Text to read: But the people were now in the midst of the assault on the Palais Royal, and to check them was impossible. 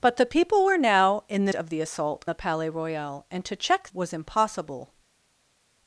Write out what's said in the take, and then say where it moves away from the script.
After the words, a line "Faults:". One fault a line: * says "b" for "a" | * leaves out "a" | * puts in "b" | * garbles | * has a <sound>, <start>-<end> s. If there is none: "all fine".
But the people were now in the of the assault the Palais Royal, and to check was impossible.
Faults:
* leaves out "midst"
* leaves out "on"
* leaves out "them"